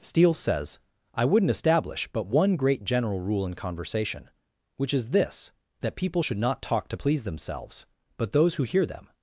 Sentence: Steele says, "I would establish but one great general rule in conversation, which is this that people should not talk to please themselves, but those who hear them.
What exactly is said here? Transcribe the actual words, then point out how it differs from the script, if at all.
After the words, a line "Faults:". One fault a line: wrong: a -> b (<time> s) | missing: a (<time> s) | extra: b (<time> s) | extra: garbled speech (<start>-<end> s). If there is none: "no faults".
Steele says, "I wouldn't establish but one great general rule in conversation, which is this that people should not talk to please themselves, but those who hear them.
Faults:
wrong: would -> wouldn't (1.2 s)